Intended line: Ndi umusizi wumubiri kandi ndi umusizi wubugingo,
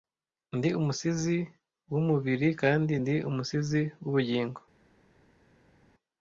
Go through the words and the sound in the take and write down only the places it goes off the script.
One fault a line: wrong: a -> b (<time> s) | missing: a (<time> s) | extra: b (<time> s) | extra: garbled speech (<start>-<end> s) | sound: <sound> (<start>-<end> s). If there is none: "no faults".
no faults